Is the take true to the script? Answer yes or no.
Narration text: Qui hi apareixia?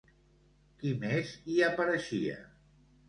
no